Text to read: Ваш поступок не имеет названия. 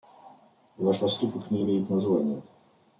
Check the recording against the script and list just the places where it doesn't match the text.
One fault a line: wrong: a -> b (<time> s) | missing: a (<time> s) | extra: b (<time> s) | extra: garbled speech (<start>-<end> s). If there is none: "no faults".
no faults